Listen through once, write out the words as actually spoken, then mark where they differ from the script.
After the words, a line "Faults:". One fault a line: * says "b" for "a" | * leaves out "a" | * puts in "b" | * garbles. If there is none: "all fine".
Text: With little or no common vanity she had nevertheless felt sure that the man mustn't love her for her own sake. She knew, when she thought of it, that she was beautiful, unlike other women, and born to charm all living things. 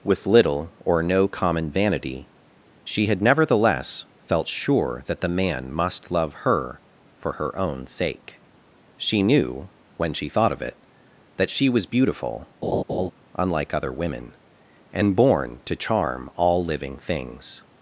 With little or no common vanity she had nevertheless felt sure that the man must love her for her own sake. She knew, when she thought of it, that she was beautiful, unlike other women, and born to charm all living things.
Faults:
* says "must" for "mustn't"